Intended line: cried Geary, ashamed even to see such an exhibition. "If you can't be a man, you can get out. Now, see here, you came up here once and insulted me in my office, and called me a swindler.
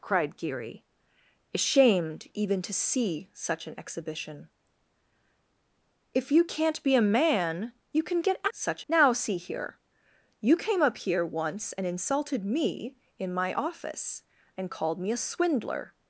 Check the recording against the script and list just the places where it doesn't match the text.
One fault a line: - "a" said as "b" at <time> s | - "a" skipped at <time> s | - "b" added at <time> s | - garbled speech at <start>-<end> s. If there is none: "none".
- "out" said as "such" at 8.5 s